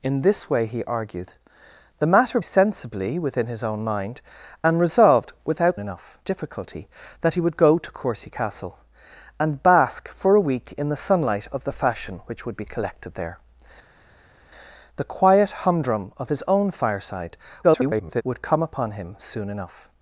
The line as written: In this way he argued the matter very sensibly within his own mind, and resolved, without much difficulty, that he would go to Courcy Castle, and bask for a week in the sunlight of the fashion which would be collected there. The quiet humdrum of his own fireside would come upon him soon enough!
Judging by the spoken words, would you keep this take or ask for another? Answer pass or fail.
fail